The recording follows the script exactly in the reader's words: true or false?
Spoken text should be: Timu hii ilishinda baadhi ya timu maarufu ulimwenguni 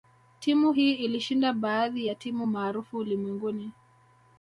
true